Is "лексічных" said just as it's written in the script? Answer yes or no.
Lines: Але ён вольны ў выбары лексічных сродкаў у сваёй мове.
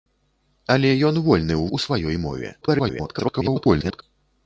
no